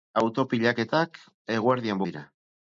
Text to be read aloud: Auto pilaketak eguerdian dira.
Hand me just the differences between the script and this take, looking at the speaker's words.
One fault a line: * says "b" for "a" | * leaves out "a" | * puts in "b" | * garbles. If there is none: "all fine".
all fine